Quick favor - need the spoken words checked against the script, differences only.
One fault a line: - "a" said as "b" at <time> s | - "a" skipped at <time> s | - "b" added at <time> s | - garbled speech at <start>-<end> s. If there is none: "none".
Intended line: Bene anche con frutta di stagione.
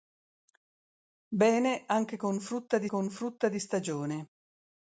- "con frutta di" added at 2.8 s